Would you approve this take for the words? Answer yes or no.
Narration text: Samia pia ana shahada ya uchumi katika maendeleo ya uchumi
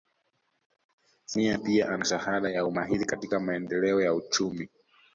no